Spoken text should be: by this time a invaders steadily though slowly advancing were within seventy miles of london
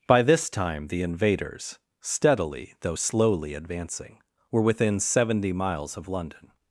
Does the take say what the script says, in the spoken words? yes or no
no